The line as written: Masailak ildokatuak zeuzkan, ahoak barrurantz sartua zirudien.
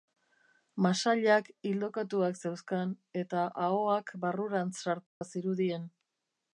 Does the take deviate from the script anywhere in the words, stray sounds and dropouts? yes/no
yes